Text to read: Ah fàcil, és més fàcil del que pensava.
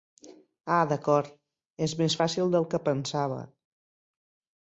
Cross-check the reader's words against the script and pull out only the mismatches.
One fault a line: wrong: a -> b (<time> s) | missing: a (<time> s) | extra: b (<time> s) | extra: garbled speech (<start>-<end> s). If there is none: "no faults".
wrong: fàcil -> d'acord (0.9 s)